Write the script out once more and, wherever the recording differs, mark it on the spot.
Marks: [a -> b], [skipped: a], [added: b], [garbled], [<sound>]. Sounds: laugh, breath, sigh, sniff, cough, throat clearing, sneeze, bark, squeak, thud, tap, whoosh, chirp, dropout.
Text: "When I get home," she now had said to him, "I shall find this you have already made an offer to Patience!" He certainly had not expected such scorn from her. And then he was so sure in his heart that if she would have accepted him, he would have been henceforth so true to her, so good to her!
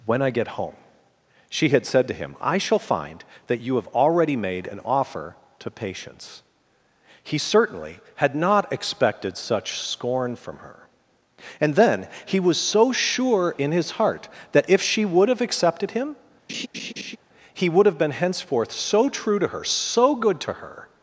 "When I get home," she [skipped: now] had said to him, "I shall find [this -> that] you have already made an offer to Patience!" He certainly had not expected such scorn from her. And then he was so sure in his heart that if she would have accepted him, [laugh] he would have been henceforth so true to her, so good to her!